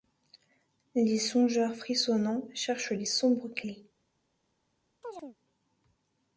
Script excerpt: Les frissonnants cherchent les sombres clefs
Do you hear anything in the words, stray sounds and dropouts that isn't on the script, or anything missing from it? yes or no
yes